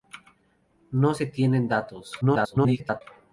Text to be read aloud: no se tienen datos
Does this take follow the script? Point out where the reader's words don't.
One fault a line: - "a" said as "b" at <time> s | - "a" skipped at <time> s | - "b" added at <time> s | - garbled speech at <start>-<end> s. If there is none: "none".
- garbled speech at 2.2-3.0 s